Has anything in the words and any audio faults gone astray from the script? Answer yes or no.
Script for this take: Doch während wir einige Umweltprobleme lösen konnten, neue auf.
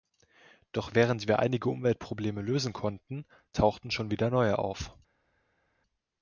yes